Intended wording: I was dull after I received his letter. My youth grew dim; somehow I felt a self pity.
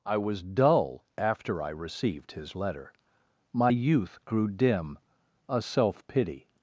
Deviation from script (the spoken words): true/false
true